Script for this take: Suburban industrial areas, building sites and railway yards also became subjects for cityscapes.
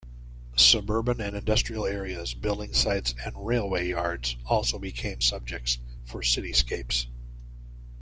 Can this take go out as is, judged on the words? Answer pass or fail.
fail